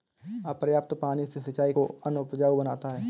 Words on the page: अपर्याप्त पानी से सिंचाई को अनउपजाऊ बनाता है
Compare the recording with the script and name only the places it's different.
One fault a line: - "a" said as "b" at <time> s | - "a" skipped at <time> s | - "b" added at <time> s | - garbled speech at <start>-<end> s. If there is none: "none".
none